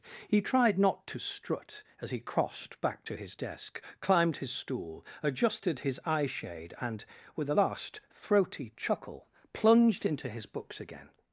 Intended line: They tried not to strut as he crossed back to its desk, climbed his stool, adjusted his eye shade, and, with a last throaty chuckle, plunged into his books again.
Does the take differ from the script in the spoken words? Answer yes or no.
yes